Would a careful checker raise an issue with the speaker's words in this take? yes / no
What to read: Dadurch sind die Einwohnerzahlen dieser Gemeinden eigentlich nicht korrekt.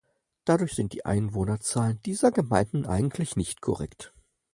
no